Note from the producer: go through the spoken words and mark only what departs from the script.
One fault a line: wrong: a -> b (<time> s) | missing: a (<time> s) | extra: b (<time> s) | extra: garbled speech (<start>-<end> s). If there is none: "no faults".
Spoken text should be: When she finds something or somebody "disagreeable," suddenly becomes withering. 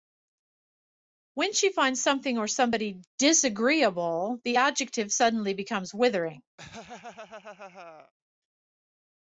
extra: the adjective (4.4 s)